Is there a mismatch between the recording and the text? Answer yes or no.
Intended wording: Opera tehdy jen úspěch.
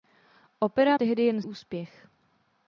no